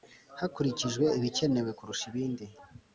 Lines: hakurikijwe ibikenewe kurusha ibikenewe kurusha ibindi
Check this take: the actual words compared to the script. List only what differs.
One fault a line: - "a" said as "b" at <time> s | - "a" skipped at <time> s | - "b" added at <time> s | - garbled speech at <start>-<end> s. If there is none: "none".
- "ibikenewe kurusha" skipped at 2.0 s